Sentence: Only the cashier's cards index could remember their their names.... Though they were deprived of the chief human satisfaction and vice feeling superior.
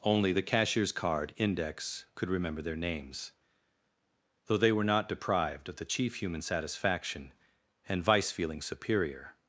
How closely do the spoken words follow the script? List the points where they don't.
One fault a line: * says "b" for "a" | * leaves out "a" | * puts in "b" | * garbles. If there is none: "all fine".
* says "card" for "cards"
* leaves out "their"
* puts in "not"